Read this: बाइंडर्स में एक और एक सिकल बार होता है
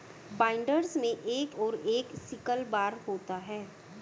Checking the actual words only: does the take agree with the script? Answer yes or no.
yes